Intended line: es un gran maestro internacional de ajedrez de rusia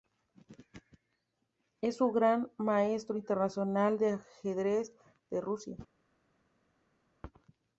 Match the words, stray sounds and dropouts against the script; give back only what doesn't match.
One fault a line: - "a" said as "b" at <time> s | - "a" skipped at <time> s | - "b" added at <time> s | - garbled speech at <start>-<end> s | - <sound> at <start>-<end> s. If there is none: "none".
none